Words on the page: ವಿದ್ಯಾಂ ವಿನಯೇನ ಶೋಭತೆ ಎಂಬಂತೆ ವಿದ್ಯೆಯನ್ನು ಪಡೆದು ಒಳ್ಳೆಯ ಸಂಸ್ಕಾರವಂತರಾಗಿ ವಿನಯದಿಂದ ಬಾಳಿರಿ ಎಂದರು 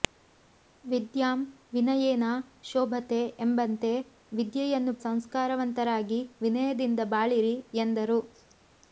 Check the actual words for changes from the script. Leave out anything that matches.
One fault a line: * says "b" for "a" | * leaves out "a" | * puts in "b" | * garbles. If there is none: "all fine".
* leaves out "ಪಡೆದು ಒಳ್ಳೆಯ"